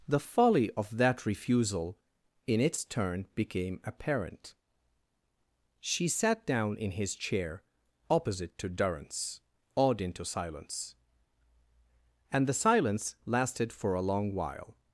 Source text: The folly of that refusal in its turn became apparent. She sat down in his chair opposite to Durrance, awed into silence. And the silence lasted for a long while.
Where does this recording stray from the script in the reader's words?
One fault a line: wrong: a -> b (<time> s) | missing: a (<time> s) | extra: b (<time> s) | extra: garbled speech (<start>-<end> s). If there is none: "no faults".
no faults